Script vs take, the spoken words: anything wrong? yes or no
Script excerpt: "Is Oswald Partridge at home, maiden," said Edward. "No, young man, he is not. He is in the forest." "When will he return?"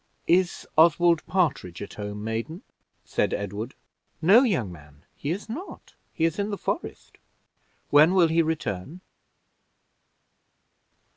no